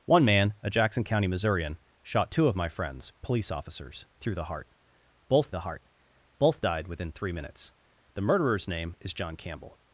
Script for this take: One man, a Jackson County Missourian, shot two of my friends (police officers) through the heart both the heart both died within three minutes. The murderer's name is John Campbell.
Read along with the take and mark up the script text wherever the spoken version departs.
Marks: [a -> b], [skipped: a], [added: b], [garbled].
One man, a Jackson County Missourian, shot two of my friends (police officers) through the heart both the heart both died within three minutes. The murderer's name is John Campbell.